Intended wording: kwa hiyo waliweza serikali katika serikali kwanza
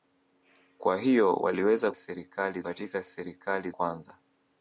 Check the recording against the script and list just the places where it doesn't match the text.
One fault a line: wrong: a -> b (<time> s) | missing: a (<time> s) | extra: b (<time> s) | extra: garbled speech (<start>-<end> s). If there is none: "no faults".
no faults